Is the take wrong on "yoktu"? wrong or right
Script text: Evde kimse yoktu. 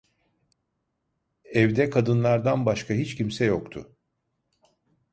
right